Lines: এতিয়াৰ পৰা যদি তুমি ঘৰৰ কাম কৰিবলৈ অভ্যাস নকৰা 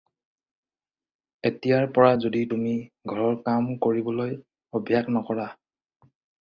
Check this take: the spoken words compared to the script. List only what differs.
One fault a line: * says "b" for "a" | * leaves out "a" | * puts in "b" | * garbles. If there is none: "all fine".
all fine